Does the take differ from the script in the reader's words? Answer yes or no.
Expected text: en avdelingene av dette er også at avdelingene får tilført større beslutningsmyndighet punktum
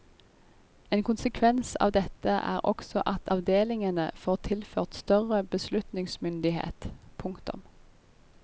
yes